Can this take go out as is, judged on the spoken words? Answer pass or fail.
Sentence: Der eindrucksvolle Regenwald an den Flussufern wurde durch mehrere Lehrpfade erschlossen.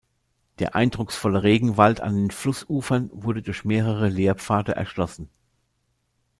pass